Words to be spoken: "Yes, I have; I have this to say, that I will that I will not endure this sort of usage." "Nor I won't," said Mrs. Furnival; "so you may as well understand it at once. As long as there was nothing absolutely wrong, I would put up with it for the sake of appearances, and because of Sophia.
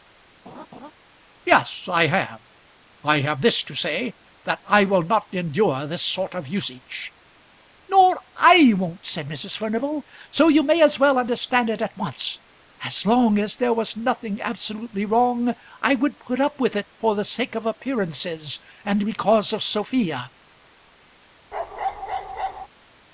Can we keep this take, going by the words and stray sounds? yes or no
no